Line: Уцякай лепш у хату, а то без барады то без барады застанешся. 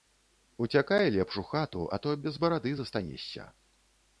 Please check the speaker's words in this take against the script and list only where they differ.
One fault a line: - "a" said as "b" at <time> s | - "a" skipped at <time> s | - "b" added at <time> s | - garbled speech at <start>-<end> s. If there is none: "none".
- "то без барады" skipped at 2.7 s